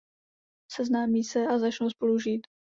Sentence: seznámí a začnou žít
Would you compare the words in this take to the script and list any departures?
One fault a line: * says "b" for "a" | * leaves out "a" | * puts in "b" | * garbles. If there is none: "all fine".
* puts in "se"
* puts in "spolu"